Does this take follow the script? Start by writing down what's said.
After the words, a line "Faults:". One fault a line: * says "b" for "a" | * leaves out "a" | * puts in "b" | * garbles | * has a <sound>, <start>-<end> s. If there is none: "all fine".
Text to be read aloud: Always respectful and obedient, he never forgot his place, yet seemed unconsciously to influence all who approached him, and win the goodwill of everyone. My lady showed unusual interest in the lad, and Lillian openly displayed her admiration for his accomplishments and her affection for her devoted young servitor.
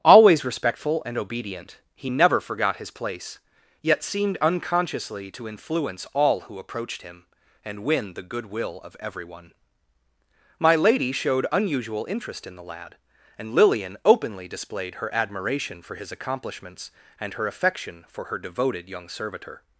Always respectful and obedient, he never forgot his place, yet seemed unconsciously to influence all who approached him, and win the goodwill of everyone. My lady showed unusual interest in the lad, and Lillian openly displayed her admiration for his accomplishments and her affection for her devoted young servitor.
Faults:
all fine